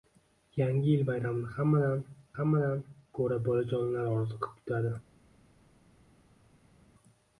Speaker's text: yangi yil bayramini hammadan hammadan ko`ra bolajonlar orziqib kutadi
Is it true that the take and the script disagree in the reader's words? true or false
false